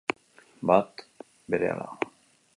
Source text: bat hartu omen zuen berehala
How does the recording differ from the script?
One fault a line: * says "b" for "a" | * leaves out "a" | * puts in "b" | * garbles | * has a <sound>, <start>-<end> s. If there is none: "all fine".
* leaves out "hartu omen zuen"